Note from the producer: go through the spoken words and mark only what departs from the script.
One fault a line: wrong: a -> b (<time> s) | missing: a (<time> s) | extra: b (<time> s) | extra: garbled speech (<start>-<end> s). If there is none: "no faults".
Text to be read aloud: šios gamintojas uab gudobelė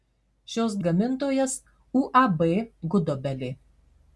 no faults